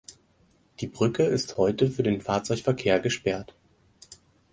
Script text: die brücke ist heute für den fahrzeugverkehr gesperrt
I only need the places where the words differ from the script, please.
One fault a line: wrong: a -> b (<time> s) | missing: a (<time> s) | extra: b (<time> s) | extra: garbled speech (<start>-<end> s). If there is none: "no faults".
no faults